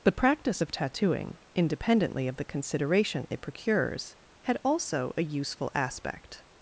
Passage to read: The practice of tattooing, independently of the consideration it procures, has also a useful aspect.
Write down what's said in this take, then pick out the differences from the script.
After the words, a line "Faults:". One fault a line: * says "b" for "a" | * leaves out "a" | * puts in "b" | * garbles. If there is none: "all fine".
The practice of tattooing, independently of the consideration it procures, had also a useful aspect.
Faults:
* says "had" for "has"